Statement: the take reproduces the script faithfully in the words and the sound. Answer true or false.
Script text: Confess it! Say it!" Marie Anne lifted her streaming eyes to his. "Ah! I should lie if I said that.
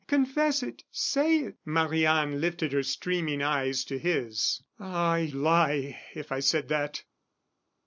false